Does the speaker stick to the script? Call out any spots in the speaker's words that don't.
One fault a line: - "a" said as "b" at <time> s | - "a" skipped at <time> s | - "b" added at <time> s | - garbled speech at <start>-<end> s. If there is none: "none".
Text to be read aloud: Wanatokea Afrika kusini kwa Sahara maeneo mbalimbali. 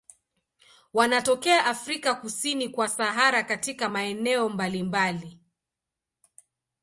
- "katika" added at 3.4 s